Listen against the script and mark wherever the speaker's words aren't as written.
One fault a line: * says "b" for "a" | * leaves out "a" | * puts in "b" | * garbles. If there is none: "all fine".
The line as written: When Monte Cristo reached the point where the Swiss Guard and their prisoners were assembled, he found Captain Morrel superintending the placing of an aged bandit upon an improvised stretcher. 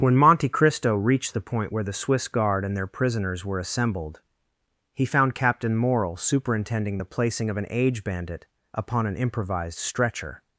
* says "age" for "aged"